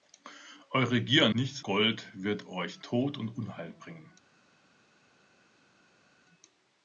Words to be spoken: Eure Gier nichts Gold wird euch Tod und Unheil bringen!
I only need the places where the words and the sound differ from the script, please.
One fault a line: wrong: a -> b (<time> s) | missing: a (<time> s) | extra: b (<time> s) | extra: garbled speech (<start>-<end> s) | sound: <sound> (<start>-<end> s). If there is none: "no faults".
no faults